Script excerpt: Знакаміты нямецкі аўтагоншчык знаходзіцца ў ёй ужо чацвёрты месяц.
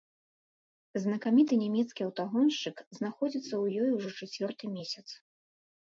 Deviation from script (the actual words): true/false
false